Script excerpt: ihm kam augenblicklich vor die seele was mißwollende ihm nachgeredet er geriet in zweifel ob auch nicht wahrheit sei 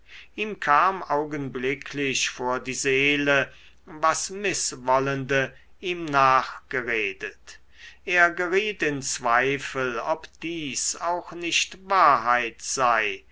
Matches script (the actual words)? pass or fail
fail